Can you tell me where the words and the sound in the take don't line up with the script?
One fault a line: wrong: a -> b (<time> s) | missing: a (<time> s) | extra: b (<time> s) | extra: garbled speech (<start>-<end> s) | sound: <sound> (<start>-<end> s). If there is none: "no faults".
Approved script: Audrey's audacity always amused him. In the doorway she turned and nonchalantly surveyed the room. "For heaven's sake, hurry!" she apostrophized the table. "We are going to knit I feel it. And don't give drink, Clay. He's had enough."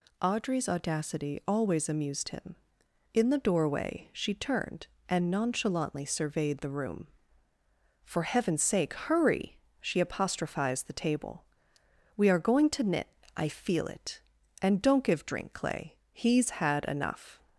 no faults